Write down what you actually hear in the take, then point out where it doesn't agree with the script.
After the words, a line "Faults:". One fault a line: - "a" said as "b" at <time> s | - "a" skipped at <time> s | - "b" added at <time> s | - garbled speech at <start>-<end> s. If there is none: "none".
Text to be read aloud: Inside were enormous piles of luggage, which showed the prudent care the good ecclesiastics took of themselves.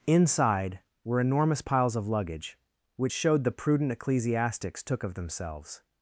Inside were enormous piles of luggage, which showed the prudent ecclesiastics took of themselves.
Faults:
- "care the good" skipped at 3.9 s